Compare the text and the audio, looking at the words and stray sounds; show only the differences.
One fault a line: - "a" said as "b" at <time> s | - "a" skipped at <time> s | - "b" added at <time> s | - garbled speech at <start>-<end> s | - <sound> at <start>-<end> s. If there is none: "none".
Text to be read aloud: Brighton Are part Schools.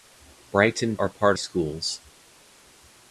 none